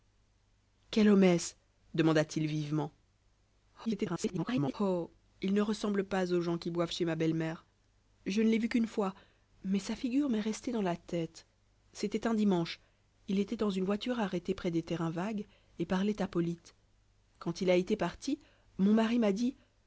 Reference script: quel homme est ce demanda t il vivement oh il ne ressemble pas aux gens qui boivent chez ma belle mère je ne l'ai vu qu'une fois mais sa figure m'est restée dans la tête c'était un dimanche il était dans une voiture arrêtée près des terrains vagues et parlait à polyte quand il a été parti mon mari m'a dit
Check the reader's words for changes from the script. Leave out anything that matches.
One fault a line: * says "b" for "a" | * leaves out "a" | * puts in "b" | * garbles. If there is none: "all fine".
* garbles